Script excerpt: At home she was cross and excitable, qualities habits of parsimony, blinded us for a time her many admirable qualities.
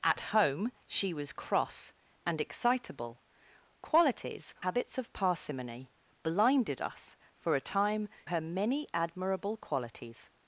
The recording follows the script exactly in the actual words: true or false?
true